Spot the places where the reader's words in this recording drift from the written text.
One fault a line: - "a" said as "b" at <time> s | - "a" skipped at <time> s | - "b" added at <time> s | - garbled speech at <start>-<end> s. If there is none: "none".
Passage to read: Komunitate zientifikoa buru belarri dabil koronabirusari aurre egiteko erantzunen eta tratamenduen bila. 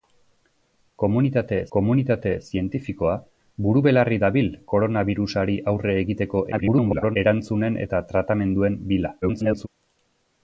- "komunitate" added at 1.7 s
- garbled speech at 6.5-7.2 s
- garbled speech at 9.2-9.7 s